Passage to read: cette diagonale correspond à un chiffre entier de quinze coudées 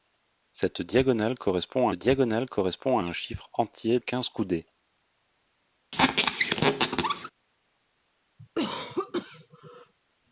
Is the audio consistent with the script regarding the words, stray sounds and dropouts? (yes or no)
no